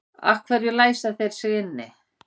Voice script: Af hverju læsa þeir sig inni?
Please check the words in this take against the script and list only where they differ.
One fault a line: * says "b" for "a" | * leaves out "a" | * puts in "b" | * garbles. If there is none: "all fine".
all fine